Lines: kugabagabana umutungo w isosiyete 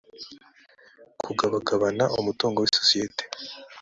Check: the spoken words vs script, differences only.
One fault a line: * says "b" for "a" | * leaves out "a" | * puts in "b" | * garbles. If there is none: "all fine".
all fine